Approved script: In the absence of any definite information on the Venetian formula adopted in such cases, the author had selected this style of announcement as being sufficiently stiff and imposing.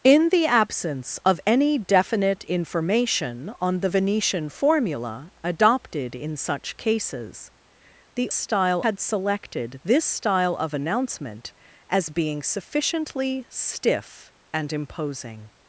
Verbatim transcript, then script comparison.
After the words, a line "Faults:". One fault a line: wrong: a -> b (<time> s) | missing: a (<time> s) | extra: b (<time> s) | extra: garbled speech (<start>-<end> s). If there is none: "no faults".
In the absence of any definite information on the Venetian formula adopted in such cases, the style had selected this style of announcement as being sufficiently stiff and imposing.
Faults:
wrong: author -> style (8.3 s)